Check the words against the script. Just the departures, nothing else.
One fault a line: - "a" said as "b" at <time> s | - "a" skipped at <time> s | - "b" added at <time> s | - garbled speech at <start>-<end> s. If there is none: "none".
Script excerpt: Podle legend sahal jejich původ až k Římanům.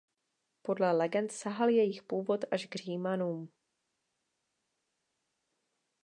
none